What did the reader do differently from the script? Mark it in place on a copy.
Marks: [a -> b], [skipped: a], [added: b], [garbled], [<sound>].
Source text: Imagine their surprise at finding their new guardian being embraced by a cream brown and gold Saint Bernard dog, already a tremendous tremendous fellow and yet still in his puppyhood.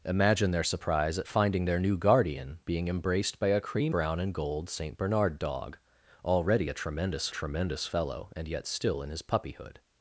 Imagine their surprise at finding their new guardian being embraced by a cream brown and gold Saint Bernard dog, already a tremendous tremendous fellow and yet still in his puppyhood.